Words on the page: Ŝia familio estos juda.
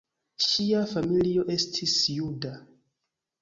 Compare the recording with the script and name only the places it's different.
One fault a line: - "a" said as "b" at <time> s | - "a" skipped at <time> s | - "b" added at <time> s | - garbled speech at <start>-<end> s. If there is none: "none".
- "estos" said as "estis" at 1.6 s